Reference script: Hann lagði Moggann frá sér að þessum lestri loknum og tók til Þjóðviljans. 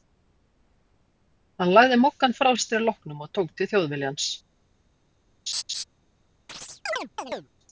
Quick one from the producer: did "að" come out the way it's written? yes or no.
no